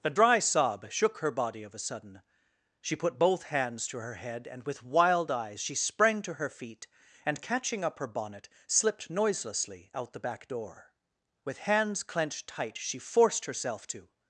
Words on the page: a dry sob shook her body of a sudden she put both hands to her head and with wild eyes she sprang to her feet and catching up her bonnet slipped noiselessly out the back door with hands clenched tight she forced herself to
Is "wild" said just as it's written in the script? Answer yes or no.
yes